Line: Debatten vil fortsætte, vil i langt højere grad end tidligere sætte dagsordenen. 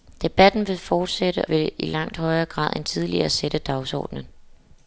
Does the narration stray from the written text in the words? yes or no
no